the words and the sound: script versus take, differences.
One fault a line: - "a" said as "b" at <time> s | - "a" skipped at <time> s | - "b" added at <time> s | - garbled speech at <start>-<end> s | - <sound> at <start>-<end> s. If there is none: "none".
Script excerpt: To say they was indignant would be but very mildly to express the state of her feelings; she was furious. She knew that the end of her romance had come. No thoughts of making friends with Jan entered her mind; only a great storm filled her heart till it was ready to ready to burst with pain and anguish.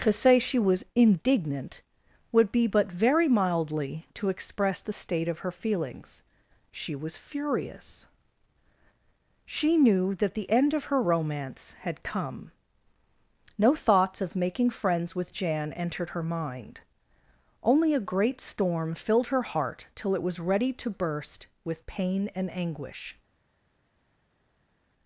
- "they" said as "she" at 0.4 s
- "ready to" skipped at 20.9 s